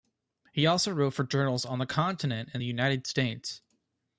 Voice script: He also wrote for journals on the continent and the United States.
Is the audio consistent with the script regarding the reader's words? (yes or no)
yes